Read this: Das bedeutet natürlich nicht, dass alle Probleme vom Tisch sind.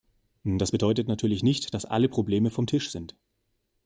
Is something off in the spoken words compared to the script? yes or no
no